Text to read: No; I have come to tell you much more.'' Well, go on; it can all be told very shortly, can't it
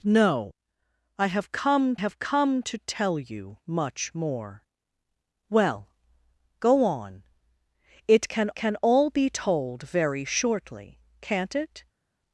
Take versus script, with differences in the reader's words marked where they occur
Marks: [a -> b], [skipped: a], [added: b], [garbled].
No; I have come [added: have come] to tell you much more.'' Well, go on; it can [added: can] all be told very shortly, can't it